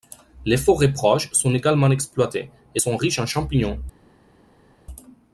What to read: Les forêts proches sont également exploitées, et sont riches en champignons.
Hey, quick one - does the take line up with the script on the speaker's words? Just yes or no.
yes